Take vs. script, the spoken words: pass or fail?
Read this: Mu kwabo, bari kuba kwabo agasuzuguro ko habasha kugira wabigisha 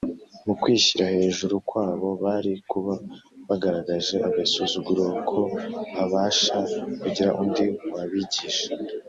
fail